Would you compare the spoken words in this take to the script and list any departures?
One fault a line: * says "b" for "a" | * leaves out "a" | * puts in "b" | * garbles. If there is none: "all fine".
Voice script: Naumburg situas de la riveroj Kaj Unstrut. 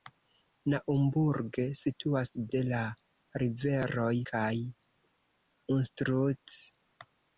all fine